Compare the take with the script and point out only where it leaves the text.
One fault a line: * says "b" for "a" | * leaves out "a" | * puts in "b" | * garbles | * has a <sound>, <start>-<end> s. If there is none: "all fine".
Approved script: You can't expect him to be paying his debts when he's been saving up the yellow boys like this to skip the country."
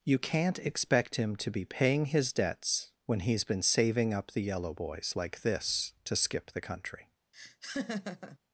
* has a laugh, 7.3-8.4 s